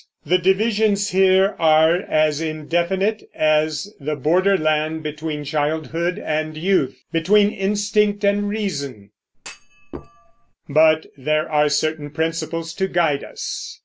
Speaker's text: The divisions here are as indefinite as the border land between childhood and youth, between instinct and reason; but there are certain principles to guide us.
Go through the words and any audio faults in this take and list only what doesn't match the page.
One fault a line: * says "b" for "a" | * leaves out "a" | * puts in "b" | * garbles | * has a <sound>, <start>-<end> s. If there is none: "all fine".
* has a thud, 9.3-10.5 s